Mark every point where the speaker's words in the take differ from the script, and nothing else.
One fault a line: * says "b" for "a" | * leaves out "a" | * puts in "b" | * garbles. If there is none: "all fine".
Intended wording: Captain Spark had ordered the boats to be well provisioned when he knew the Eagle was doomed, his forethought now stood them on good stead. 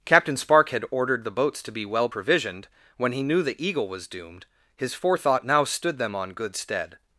all fine